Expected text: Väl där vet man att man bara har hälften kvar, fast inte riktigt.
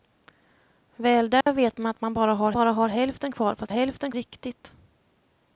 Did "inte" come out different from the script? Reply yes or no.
yes